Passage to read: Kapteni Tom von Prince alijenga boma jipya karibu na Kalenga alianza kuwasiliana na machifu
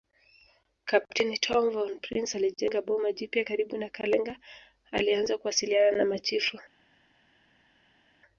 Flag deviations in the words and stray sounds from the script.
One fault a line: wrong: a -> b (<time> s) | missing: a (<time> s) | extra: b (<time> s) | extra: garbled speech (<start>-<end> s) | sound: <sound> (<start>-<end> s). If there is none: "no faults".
no faults